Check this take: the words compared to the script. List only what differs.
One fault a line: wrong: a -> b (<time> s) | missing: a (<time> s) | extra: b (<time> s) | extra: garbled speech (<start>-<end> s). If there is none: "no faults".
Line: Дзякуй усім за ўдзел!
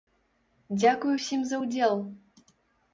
no faults